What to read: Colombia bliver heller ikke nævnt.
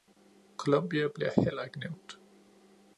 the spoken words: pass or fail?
pass